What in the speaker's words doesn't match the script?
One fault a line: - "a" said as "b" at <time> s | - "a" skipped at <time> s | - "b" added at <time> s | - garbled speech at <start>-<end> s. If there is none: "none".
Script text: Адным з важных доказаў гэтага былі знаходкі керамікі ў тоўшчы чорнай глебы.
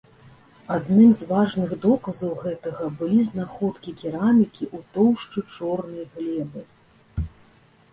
none